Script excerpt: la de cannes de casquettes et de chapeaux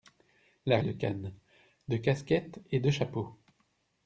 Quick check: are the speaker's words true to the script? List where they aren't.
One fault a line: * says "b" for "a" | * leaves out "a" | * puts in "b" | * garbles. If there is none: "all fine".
all fine